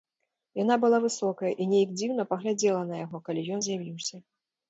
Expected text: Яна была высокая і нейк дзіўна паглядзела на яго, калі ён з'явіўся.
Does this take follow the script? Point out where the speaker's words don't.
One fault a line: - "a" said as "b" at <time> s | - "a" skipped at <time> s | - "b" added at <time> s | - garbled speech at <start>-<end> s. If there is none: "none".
none